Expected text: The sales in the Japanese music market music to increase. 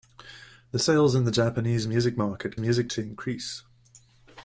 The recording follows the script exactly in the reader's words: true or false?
true